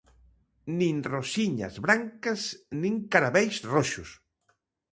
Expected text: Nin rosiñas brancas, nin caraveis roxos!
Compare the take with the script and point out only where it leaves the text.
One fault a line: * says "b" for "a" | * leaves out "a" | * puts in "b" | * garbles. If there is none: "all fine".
all fine